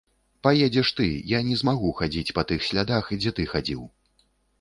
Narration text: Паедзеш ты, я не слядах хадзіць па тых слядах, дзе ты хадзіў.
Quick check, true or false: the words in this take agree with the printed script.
false